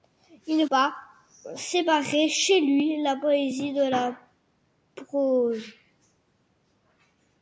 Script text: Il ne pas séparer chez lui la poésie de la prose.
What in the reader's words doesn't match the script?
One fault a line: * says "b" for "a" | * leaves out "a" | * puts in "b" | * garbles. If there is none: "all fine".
all fine